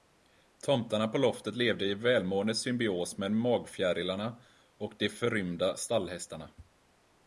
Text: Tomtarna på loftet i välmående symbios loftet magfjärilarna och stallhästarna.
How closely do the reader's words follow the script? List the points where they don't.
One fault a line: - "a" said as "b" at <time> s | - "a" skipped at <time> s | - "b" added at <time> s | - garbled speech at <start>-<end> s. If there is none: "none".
- "levde" added at 1.6 s
- "loftet" said as "med" at 3.2 s
- "de förrymda" added at 5.0 s